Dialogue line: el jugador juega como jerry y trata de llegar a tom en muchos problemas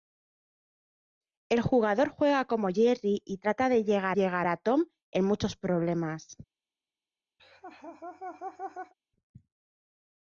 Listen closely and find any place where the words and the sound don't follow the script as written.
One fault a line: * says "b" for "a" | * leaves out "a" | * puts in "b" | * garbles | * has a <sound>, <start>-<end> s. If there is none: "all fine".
* puts in "llegar"
* has a laugh, 7.4-8.9 s